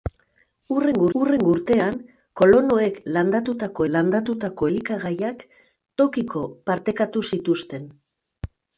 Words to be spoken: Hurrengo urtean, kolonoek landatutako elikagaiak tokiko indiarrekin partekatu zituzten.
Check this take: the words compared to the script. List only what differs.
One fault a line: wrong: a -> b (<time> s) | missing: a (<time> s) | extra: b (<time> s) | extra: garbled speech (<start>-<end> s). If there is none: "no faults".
extra: hurrengo (1.2 s)
extra: landatutako (4.0 s)
missing: indiarrekin (6.5 s)